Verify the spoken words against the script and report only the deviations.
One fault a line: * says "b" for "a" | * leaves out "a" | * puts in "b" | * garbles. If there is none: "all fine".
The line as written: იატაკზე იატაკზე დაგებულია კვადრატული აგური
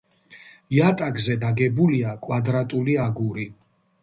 * leaves out "იატაკზე"